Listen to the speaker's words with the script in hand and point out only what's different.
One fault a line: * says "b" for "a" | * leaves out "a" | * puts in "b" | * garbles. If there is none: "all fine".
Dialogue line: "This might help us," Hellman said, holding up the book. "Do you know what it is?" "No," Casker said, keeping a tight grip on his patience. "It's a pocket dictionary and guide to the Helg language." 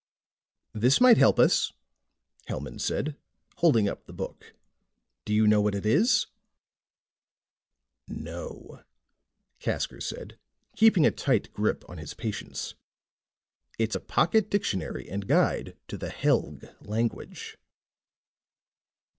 all fine